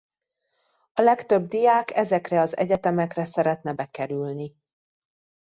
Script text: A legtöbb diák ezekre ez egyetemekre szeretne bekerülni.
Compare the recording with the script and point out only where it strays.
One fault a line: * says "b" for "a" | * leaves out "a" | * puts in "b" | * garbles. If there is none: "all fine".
* says "az" for "ez"